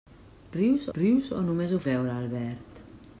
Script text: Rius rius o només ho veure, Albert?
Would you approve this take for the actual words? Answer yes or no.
yes